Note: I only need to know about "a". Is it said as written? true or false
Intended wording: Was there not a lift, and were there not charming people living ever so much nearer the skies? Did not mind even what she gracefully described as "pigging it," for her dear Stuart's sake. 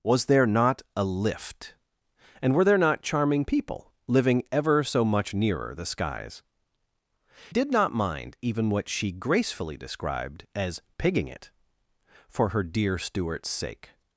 true